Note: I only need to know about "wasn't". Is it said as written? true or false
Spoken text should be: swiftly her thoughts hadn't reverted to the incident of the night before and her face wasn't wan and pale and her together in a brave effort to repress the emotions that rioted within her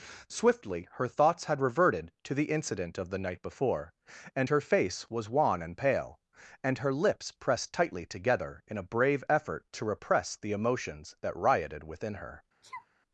false